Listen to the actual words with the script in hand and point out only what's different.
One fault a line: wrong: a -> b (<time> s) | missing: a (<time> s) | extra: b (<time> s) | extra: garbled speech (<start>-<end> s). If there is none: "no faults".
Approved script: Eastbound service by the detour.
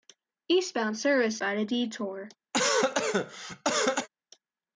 no faults